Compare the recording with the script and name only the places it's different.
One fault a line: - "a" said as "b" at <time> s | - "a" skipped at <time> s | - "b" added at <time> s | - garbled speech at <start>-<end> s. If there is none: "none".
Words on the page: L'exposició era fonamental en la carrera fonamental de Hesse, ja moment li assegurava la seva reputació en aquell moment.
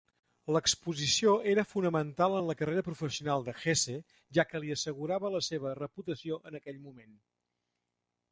- "fonamental" said as "professional" at 2.9 s
- "moment" said as "que" at 4.5 s